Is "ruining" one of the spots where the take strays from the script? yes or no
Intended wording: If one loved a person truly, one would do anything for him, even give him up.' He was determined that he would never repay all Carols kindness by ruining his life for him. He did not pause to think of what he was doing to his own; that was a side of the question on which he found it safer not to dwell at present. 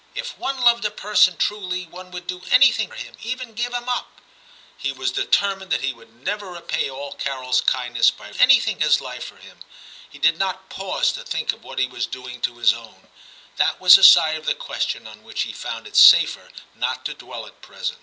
yes